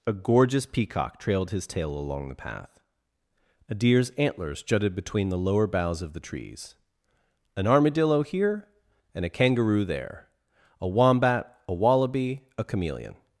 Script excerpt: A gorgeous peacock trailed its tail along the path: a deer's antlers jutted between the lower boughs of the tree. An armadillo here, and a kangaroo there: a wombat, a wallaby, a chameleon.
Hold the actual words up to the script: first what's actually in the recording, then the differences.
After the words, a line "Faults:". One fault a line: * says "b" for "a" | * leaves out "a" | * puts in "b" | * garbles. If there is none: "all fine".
A gorgeous peacock trailed his tail along the path: a deer's antlers jutted between the lower boughs of the trees. An armadillo here, and a kangaroo there: a wombat, a wallaby, a chameleon.
Faults:
* says "his" for "its"
* says "trees" for "tree"